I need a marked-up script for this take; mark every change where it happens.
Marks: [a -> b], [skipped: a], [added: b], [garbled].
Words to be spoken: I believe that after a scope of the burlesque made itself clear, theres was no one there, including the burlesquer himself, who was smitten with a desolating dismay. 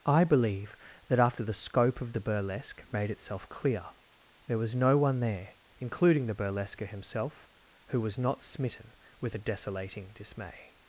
I believe that after [a -> the] scope of the burlesque made itself clear, [theres -> there] was no one there, including the burlesquer himself, who was [added: not] smitten with a desolating dismay.